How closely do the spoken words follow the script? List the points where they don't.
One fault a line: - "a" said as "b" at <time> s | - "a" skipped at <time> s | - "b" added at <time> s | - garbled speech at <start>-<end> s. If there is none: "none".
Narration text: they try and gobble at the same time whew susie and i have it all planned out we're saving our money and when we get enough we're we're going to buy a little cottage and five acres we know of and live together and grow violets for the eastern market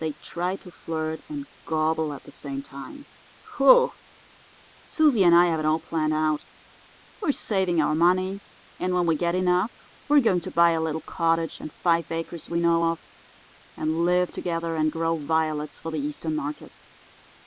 - "to flirt" added at 0.6 s
- "we're" skipped at 10.2 s